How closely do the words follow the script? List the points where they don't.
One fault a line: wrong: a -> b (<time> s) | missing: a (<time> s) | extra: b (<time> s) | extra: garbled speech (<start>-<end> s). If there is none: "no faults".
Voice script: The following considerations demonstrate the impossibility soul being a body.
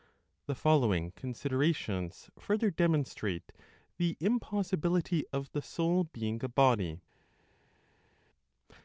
extra: further (2.4 s)
extra: of the (5.3 s)